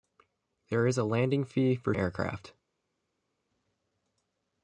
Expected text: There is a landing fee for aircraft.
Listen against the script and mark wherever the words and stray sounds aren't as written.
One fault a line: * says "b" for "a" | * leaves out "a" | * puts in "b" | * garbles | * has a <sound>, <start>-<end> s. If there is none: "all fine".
all fine